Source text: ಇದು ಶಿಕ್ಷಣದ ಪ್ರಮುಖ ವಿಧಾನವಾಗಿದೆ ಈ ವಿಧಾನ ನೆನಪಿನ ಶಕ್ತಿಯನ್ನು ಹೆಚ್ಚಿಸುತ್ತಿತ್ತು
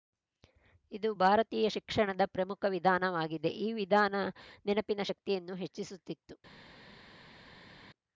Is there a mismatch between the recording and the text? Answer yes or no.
yes